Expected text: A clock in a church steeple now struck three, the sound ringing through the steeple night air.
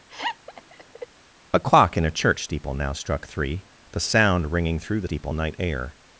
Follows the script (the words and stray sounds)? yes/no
no